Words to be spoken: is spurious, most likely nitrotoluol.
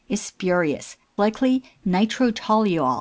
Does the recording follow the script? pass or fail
fail